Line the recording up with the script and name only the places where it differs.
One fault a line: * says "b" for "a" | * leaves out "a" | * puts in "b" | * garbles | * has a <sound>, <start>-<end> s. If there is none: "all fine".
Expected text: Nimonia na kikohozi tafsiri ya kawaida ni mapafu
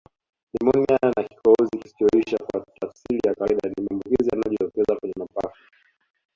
* puts in "kisichoisha kwa"
* puts in "maambukizi yanayojitokeza kwenye"